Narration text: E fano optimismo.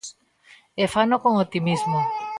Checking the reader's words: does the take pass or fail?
fail